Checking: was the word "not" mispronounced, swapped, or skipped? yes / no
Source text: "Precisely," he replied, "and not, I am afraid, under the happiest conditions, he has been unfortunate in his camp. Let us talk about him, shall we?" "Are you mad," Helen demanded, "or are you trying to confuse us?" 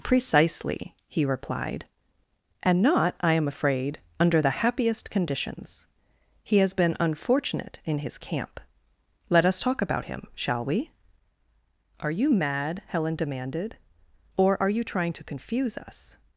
no